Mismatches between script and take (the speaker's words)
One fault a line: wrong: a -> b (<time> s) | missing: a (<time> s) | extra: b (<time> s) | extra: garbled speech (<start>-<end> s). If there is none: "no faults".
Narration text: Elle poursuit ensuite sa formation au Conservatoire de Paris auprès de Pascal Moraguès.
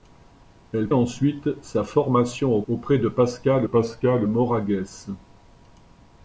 missing: poursuit (0.9 s)
wrong: Conservatoire -> Auprès (2.7 s)
wrong: Paris auprès de -> Pascal (3.1 s)